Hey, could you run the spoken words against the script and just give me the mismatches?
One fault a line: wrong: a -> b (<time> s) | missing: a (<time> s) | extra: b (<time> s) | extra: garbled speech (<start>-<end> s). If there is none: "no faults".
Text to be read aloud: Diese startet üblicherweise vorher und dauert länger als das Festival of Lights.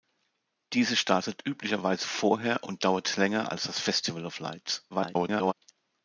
extra: garbled speech (4.9-5.5 s)